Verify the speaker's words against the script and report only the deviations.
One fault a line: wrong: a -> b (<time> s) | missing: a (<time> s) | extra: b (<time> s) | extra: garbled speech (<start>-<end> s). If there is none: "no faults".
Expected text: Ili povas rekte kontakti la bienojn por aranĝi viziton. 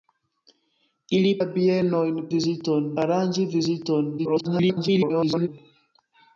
missing: povas rekte kontakti (1.3 s)
wrong: por -> viziton (2.4 s)
extra: garbled speech (4.2-5.5 s)